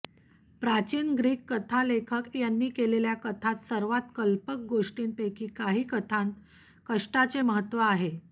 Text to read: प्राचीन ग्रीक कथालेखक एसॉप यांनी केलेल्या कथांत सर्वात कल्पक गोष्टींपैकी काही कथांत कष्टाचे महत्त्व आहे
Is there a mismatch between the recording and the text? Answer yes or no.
yes